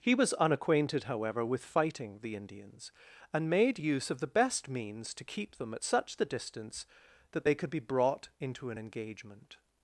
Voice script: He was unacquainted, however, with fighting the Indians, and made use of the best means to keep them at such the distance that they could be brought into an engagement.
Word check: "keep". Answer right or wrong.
right